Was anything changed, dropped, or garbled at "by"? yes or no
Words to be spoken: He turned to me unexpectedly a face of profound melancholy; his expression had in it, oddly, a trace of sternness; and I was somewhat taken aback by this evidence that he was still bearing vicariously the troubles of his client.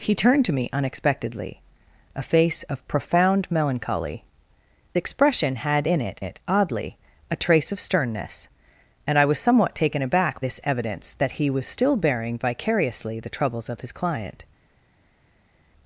yes